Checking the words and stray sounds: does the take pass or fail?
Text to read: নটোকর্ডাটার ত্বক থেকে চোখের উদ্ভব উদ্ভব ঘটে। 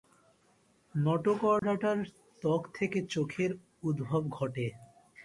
fail